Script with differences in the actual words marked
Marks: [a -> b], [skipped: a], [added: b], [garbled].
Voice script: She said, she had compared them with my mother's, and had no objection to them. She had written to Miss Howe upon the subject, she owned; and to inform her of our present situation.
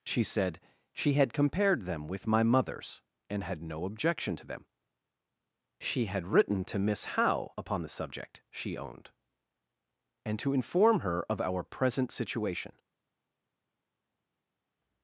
She said, she had compared them with my mother's, and had no objection to them. She had written to Miss Howe upon the subject, she owned; and to inform her of our present situation.